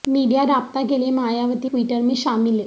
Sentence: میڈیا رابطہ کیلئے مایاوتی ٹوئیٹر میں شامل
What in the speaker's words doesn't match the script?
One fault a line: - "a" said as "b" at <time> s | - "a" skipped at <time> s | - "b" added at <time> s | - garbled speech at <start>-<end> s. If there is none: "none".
none